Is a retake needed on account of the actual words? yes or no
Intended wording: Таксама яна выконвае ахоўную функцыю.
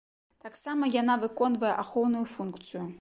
no